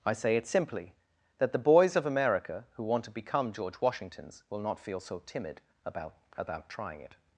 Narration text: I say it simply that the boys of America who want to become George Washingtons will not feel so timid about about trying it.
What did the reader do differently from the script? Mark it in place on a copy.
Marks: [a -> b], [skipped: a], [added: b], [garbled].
I say it simply that the boys of America who want to become George Washingtons will not feel so timid about about trying it.